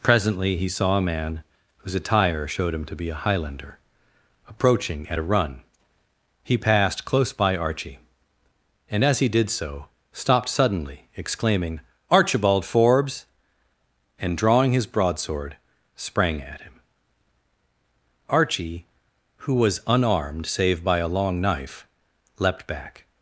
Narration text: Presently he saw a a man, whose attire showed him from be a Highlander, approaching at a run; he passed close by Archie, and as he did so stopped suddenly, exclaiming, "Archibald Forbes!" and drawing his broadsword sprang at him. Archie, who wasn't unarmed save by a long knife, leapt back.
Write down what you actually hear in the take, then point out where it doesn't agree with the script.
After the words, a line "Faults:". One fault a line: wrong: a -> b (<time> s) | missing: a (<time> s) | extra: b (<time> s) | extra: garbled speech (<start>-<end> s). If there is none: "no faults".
Presently he saw a man, whose attire showed him to be a Highlander, approaching at a run; he passed close by Archie, and as he did so stopped suddenly, exclaiming, "Archibald Forbes!" and drawing his broadsword sprang at him. Archie, who was unarmed save by a long knife, leapt back.
Faults:
missing: a (1.1 s)
wrong: from -> to (2.9 s)
wrong: wasn't -> was (19.6 s)